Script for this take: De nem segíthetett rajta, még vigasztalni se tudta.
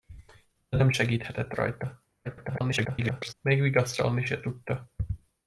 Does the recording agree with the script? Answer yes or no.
no